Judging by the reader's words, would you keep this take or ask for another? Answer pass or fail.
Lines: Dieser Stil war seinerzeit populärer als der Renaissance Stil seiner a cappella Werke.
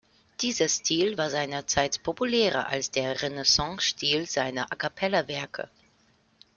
pass